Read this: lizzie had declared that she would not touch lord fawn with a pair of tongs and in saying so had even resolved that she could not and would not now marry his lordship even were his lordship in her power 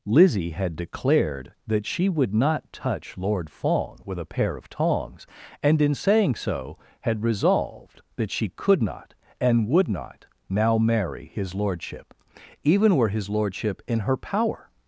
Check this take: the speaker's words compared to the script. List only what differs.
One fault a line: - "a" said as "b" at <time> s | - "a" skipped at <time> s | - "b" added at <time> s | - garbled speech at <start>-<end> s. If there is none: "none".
- "even" skipped at 7.2 s